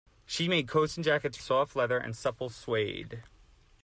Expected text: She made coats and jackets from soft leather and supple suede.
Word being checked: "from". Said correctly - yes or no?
no